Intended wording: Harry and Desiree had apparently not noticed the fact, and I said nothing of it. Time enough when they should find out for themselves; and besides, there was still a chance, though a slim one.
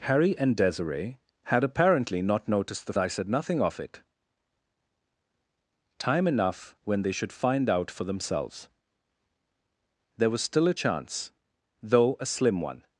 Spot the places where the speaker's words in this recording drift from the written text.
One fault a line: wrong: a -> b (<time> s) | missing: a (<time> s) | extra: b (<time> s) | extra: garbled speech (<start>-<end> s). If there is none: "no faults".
missing: fact and (2.9 s)
missing: and besides (8.7 s)